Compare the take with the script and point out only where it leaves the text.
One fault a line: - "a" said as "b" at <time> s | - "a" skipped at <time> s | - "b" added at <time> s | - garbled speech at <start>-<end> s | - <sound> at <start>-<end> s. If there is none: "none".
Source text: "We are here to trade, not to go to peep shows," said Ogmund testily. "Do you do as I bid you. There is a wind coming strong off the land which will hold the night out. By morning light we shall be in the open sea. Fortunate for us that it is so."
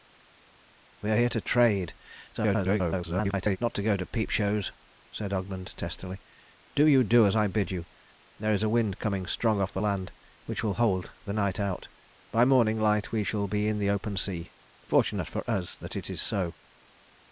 - garbled speech at 2.3-3.6 s